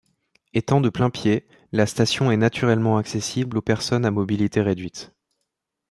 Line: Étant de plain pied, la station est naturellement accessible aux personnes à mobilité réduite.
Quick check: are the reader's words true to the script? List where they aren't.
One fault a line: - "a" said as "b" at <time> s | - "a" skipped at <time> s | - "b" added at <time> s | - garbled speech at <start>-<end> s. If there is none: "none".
none